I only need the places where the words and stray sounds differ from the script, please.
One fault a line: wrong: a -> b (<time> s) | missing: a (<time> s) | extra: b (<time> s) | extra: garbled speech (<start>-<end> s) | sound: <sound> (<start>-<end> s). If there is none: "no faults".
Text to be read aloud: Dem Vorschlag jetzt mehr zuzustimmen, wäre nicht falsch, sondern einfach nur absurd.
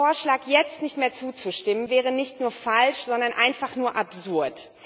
extra: nicht (0.8 s)
extra: nur (2.4 s)